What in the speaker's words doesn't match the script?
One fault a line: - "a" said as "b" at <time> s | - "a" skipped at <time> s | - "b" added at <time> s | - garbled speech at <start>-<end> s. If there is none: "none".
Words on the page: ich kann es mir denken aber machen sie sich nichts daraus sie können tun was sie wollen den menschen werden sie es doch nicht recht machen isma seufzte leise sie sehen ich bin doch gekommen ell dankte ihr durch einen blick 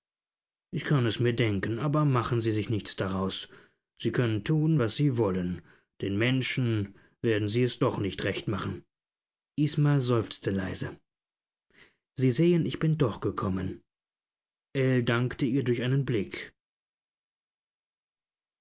none